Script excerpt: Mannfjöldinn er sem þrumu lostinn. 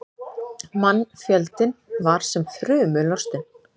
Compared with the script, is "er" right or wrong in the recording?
wrong